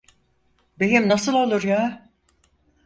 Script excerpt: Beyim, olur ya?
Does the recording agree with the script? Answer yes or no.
no